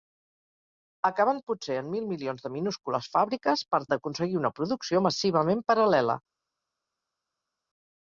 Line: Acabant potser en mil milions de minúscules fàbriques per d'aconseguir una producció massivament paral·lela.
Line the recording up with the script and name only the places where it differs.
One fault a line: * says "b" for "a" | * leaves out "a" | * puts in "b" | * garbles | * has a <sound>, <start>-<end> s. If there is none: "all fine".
all fine